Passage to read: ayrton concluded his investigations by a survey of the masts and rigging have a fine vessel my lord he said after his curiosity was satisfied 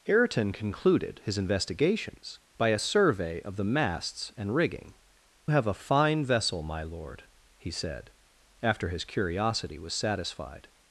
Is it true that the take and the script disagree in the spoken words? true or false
false